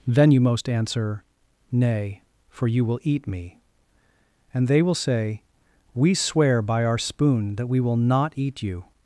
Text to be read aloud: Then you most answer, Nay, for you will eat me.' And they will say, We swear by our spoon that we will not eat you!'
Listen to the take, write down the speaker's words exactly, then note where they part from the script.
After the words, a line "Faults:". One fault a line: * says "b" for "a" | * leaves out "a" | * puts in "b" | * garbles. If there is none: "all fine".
Then you most answer, Nay, for you will eat me.' And they will say, We swear by our spoon that we will not eat you!'
Faults:
all fine